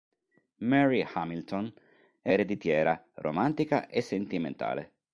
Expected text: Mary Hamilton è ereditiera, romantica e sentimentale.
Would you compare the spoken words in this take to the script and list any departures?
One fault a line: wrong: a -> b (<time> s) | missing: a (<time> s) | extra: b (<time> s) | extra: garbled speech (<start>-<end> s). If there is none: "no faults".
no faults